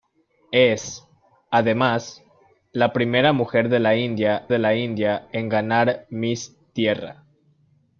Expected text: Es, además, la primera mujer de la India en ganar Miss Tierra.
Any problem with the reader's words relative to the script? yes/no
yes